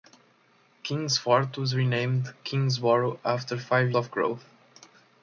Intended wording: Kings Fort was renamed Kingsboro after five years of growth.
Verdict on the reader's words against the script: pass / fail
fail